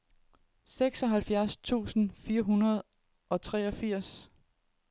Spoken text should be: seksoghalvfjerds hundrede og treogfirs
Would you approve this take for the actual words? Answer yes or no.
no